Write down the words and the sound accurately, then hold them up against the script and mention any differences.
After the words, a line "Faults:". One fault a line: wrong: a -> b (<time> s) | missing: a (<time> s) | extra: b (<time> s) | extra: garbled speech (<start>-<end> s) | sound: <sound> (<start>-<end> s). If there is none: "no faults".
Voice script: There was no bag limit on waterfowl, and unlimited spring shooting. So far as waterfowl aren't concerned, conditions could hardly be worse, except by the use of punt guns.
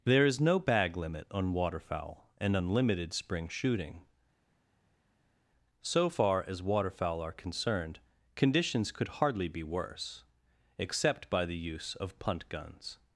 There is no bag limit on waterfowl, and unlimited spring shooting. So far as waterfowl are concerned, conditions could hardly be worse, except by the use of punt guns.
Faults:
wrong: was -> is (0.2 s)
wrong: aren't -> are (7.2 s)